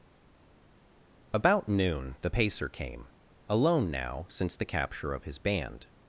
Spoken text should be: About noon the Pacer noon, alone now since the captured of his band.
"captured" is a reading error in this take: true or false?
true